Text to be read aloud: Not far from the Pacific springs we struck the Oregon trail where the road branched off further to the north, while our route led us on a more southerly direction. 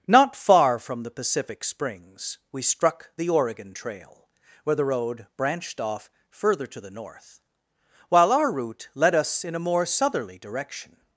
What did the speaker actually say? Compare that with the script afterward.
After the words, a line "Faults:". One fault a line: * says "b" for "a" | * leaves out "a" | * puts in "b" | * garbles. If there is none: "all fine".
Not far from the Pacific springs we struck the Oregon trail where the road branched off further to the north, while our route led us in a more southerly direction.
Faults:
* says "in" for "on"